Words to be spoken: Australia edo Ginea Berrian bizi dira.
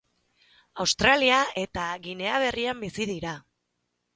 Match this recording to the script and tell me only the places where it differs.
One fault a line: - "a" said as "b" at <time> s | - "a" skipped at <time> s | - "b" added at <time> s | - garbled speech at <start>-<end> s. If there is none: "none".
- "edo" said as "eta" at 1.6 s